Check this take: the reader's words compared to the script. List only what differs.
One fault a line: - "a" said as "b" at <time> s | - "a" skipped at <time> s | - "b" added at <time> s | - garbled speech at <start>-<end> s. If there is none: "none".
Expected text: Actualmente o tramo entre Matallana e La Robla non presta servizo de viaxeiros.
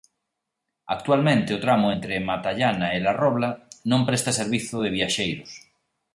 none